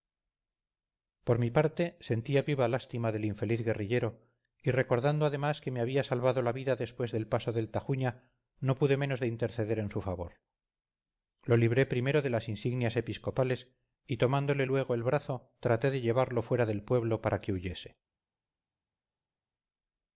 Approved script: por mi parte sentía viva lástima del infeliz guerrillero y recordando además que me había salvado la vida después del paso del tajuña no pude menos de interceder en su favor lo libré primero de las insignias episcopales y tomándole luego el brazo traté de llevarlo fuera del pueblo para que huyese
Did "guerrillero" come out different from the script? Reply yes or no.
no